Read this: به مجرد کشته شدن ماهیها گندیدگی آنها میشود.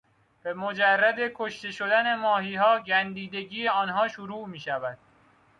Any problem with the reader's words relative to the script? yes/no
yes